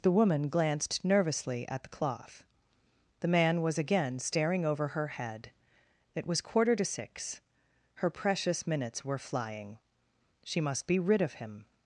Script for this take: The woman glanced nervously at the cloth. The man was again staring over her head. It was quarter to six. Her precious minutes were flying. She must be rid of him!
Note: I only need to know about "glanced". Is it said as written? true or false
true